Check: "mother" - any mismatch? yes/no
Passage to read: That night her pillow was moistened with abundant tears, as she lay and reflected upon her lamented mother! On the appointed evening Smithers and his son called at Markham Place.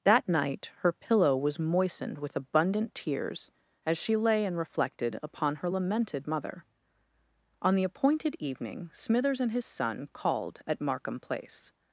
no